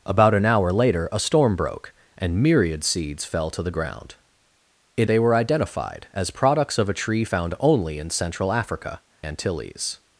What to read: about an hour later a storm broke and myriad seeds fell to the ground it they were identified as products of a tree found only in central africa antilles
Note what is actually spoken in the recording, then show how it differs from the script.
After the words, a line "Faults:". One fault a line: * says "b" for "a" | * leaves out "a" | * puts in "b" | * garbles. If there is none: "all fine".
about an hour later a storm broke and myriad seeds fell to the ground it they were identified as products of a tree found only in central africa antilles
Faults:
all fine